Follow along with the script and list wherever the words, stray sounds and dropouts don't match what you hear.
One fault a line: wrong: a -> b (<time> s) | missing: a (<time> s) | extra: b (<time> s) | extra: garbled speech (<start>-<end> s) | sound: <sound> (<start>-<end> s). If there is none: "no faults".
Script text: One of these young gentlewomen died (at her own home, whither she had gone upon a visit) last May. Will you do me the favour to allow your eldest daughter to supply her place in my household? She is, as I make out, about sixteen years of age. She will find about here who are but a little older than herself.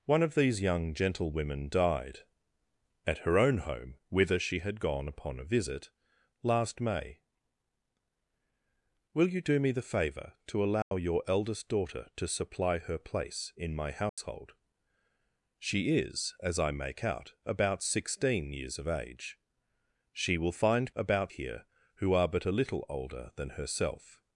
sound: dropout (10.8-10.9 s)
sound: dropout (14.1-14.2 s)